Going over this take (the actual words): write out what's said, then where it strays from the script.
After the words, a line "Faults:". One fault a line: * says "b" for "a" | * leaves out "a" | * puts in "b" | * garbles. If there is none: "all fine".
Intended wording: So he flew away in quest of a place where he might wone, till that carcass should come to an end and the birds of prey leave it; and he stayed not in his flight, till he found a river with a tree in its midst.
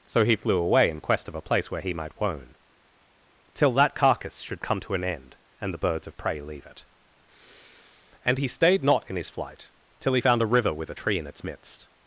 So he flew away in quest of a place where he might wone, till that carcass should come to an end and the birds of prey leave it; and he stayed not in his flight, till he found a river with a tree in its midst.
Faults:
all fine